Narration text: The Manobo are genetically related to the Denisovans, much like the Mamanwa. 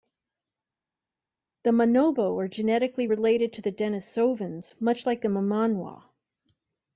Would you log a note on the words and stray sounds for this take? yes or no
no